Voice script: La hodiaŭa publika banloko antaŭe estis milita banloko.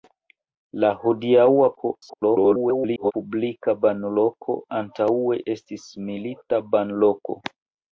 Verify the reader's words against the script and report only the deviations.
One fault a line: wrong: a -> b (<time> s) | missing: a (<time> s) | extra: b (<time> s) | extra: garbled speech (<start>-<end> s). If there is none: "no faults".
extra: garbled speech (1.8-3.1 s)